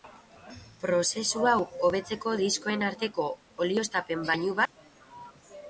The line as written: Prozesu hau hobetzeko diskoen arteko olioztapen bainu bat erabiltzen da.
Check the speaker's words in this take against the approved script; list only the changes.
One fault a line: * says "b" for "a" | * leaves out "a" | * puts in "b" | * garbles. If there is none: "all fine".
* leaves out "bat erabiltzen"